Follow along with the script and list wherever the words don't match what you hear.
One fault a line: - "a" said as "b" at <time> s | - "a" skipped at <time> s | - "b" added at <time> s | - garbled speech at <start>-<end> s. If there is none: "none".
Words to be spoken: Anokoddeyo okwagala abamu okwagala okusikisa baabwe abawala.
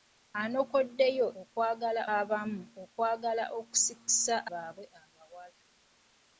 none